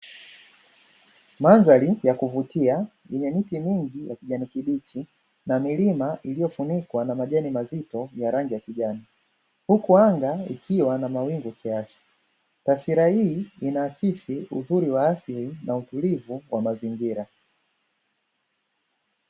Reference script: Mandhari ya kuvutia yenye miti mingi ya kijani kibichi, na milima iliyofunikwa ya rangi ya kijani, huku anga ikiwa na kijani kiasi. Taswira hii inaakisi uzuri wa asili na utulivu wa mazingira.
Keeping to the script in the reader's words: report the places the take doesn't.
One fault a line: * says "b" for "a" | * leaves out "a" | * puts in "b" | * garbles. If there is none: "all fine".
* puts in "na majani mazito"
* says "mawingu" for "kijani"